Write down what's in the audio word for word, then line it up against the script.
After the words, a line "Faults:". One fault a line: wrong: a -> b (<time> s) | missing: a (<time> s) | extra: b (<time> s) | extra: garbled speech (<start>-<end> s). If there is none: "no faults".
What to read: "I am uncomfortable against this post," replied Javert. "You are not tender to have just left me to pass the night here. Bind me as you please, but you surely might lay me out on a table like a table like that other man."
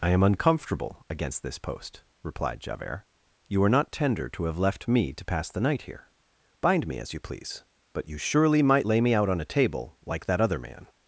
"I am uncomfortable against this post," replied Javert. "You are not tender to have left me to pass the night here. Bind me as you please, but you surely might lay me out on a table like that other man."
Faults:
missing: just (4.6 s)
missing: a table like (10.3 s)